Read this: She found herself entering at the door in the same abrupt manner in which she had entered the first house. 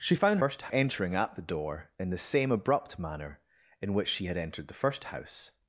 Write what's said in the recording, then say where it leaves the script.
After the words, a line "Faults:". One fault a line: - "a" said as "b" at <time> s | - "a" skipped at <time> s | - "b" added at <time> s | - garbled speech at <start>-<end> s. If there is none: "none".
She found first entering at the door in the same abrupt manner in which she had entered the first house.
Faults:
- "herself" said as "first" at 0.4 s